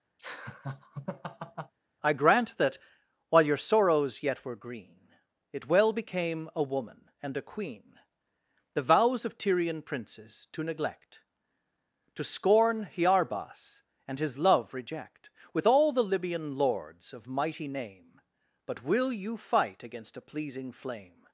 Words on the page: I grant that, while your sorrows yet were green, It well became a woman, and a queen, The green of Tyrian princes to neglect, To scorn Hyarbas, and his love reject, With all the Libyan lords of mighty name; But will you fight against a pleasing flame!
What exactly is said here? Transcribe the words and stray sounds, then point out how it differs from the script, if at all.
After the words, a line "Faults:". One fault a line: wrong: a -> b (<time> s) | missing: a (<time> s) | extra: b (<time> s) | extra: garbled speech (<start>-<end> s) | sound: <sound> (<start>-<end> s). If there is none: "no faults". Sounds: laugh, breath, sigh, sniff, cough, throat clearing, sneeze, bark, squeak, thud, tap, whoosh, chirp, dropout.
I grant that, while your sorrows yet were green, It well became a woman, and a queen, The vows of Tyrian princes to neglect, To scorn Hyarbas, and his love reject, With all the Libyan lords of mighty name; But will you fight against a pleasing flame!
Faults:
sound: laugh (0.2-1.7 s)
wrong: green -> vows (8.8 s)